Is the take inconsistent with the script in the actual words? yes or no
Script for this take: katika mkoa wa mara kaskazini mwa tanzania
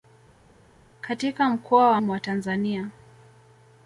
yes